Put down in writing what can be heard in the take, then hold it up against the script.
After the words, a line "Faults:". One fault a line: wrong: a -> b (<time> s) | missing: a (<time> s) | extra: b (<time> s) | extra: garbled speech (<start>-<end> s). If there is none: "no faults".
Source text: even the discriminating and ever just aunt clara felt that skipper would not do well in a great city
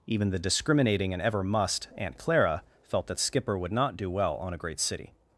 even the discriminating and ever must aunt clara felt that skipper would not do well on a great city
Faults:
wrong: just -> must (1.4 s)
wrong: in -> on (4.4 s)